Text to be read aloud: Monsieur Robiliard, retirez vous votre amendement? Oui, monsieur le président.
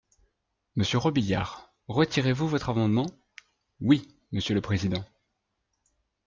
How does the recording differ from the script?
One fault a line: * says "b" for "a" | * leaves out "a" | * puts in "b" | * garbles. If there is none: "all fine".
all fine